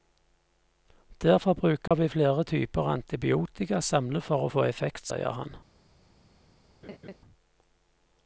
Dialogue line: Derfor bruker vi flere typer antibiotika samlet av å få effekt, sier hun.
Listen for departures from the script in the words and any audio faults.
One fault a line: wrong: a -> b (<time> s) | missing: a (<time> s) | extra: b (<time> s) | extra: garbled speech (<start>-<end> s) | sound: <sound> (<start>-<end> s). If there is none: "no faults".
sound: dropout (1.9-1.9 s)
wrong: av -> for (4.2 s)
wrong: hun -> han (5.4 s)
sound: laugh (6.8-7.2 s)